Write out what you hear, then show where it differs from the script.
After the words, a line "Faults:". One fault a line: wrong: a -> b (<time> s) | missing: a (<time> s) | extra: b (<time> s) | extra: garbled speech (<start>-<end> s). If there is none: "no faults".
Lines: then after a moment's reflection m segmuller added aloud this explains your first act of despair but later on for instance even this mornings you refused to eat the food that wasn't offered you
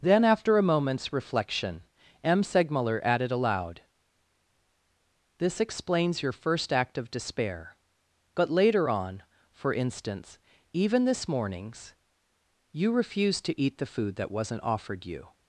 then after a moment's reflection m segmuller added aloud this explains your first act of despair but later on for instance even this mornings you refused to eat the food that wasn't offered you
Faults:
no faults